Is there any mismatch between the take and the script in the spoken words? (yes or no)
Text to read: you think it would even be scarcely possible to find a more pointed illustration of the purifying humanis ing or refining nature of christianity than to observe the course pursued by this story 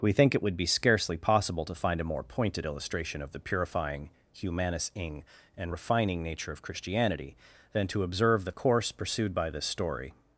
yes